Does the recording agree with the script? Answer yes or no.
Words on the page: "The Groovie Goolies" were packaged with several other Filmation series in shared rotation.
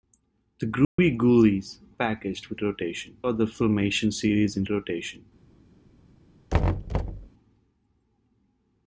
no